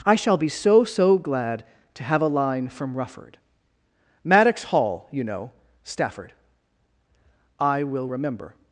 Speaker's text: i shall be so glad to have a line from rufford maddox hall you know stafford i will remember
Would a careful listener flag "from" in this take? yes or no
no